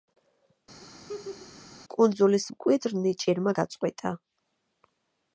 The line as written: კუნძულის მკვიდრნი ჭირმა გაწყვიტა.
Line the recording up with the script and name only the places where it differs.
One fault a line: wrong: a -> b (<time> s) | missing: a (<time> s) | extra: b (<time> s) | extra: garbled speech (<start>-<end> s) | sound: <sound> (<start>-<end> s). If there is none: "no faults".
sound: laugh (0.8-1.6 s)